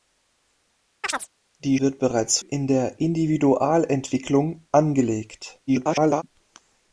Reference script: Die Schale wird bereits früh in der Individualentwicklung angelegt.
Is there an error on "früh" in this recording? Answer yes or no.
yes